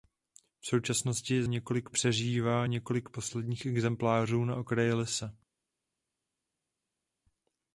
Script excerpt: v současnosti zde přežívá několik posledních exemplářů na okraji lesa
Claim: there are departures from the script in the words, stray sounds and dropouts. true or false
true